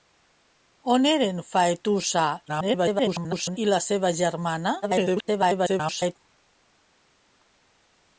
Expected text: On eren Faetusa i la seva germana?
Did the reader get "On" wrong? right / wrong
right